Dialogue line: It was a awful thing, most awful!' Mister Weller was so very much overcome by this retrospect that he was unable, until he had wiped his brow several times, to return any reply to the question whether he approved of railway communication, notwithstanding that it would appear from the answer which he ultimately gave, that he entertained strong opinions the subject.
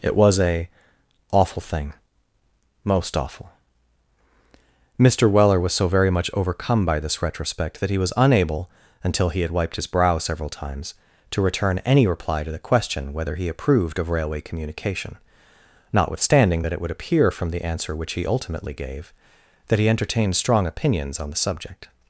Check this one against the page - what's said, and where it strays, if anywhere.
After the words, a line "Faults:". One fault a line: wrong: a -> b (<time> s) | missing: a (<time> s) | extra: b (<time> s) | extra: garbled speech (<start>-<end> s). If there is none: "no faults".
It was a awful thing, most awful!' Mister Weller was so very much overcome by this retrospect that he was unable, until he had wiped his brow several times, to return any reply to the question whether he approved of railway communication, notwithstanding that it would appear from the answer which he ultimately gave, that he entertained strong opinions on the subject.
Faults:
extra: on (21.2 s)